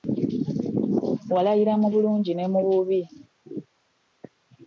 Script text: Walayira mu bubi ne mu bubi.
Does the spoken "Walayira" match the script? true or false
true